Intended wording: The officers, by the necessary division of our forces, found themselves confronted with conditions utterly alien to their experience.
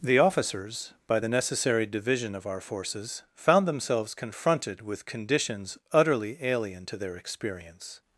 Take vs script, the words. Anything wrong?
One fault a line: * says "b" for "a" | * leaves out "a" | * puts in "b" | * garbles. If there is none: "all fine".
all fine